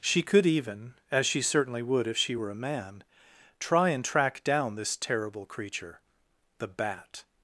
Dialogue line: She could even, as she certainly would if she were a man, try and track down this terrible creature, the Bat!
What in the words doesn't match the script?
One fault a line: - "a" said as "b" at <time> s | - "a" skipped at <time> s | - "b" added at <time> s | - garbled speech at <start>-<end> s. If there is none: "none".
none